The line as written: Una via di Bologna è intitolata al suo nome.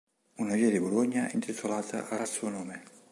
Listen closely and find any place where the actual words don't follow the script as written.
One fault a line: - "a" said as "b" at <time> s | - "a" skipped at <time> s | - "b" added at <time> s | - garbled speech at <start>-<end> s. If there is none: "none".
- "al" added at 2.2 s